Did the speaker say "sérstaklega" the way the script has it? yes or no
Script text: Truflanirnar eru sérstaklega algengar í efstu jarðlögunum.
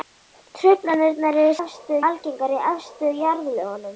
no